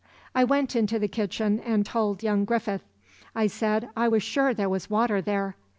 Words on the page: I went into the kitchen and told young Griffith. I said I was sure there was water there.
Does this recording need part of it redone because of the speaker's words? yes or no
no